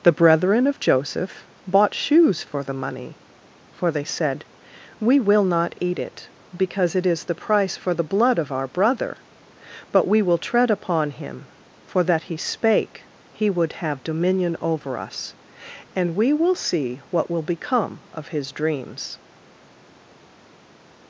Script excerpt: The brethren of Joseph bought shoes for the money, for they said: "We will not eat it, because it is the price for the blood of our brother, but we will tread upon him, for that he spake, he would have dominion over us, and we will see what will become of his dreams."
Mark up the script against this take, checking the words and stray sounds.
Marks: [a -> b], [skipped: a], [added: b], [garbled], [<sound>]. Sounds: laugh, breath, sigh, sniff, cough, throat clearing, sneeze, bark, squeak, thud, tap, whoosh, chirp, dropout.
The brethren of Joseph bought shoes for the money, for they said: "We will not eat it, because it is the price for the blood of our brother, but we will tread upon him, for that he spake, he would have dominion over us, and we will see what will become of his dreams."